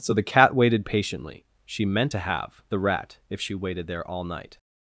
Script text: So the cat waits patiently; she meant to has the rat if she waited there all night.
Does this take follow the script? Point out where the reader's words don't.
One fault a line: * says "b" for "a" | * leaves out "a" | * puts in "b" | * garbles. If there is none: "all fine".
* says "waited" for "waits"
* says "have" for "has"